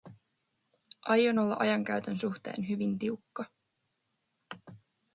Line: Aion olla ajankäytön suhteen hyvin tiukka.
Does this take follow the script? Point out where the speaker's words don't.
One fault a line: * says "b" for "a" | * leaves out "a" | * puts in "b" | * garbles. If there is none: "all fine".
all fine